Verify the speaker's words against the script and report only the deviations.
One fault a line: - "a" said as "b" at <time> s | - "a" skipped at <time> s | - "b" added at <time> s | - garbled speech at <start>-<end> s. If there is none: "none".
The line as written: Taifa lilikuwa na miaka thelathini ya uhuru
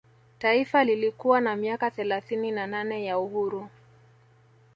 - "na nane" added at 2.5 s